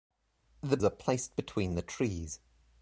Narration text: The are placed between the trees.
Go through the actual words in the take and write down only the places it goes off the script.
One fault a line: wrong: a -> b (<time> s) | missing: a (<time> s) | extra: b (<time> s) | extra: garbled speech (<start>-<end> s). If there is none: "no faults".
no faults